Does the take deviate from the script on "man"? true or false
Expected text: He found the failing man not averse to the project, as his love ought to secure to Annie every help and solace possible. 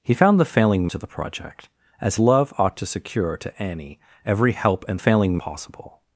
true